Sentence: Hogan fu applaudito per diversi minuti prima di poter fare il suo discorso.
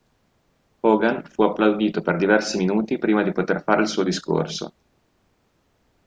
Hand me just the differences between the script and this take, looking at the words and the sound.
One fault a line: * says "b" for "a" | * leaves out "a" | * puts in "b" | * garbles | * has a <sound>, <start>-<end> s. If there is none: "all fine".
all fine